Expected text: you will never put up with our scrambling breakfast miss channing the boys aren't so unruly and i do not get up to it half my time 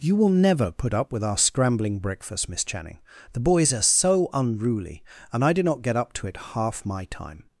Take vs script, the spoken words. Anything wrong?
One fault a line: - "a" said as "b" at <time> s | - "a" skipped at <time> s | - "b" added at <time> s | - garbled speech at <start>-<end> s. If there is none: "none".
- "aren't" said as "are" at 3.7 s